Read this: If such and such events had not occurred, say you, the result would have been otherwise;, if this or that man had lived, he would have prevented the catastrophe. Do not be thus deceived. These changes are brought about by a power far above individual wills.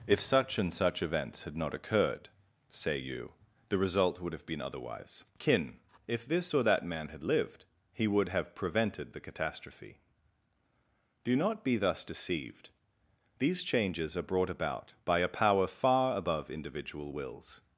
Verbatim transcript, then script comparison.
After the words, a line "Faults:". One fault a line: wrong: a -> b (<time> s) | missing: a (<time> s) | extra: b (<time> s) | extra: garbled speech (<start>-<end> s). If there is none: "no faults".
If such and such events had not occurred, say you, the result would have been otherwise;, kin if this or that man had lived, he would have prevented the catastrophe. Do not be thus deceived. These changes are brought about by a power far above individual wills.
Faults:
extra: kin (5.4 s)